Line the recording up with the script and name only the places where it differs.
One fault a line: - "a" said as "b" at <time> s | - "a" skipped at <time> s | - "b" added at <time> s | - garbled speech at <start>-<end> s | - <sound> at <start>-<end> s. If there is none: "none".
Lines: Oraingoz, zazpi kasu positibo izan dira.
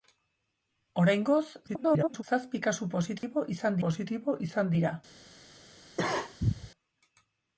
- garbled speech at 1.7-2.2 s
- dropout at 3.2-3.2 s
- "positibo izan" added at 3.9 s
- cough at 6.0-6.7 s